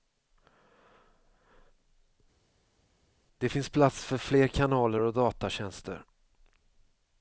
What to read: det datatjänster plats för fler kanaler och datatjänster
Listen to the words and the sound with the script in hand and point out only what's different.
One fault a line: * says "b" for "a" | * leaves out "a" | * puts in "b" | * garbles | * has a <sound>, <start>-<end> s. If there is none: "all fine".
* says "finns" for "datatjänster"